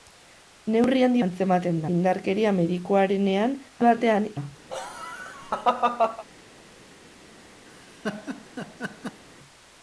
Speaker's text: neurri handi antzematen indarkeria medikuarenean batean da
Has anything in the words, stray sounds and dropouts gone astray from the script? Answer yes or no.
yes